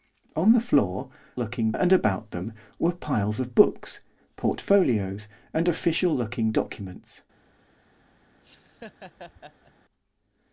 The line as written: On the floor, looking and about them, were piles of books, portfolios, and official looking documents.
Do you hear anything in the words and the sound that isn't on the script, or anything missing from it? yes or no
yes